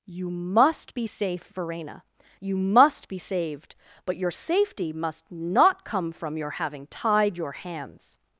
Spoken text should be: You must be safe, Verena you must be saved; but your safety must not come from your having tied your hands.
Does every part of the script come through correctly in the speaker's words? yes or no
yes